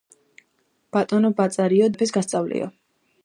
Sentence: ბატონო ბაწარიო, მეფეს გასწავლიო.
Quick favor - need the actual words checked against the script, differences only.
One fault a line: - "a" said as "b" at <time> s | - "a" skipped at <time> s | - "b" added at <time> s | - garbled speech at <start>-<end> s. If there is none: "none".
none